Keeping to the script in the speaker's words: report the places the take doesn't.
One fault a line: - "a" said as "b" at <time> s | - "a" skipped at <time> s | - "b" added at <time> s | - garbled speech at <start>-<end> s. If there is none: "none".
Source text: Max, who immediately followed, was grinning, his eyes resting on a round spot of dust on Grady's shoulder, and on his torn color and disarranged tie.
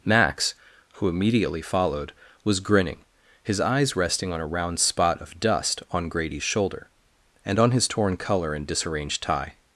none